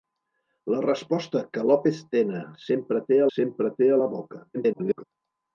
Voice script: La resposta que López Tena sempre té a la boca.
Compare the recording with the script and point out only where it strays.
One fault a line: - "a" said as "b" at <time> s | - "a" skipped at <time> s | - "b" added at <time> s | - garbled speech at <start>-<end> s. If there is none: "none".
- "sempre té" added at 3.4 s
- garbled speech at 4.5-5.0 s